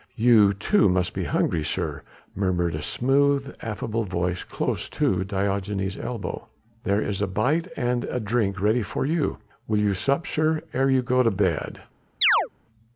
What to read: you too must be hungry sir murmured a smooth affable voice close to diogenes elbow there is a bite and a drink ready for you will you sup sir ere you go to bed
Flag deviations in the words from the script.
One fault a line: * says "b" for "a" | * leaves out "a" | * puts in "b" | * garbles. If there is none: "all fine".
all fine